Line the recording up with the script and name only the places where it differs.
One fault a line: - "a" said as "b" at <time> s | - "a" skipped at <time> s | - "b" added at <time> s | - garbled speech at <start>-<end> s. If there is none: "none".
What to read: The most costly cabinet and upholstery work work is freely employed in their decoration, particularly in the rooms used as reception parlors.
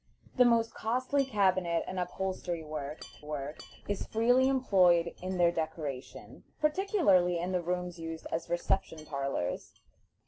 none